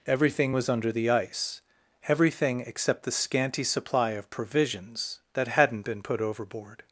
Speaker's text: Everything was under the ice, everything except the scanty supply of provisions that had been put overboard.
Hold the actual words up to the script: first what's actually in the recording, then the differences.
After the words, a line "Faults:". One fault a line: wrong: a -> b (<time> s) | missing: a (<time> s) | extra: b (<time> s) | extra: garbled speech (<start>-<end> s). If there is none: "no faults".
Everything was under the ice, everything except the scanty supply of provisions that hadn't been put overboard.
Faults:
wrong: had -> hadn't (5.5 s)